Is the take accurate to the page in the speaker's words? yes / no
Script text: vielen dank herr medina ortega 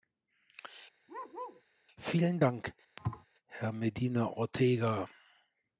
yes